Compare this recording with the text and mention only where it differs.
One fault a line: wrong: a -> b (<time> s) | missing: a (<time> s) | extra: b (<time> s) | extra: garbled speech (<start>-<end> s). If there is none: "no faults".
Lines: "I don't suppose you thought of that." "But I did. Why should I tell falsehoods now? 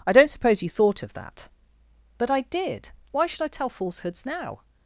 no faults